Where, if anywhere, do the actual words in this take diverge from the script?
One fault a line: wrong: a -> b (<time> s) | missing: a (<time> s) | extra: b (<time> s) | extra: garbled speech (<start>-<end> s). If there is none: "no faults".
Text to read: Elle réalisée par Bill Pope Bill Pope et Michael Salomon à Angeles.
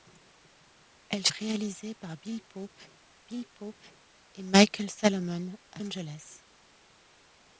no faults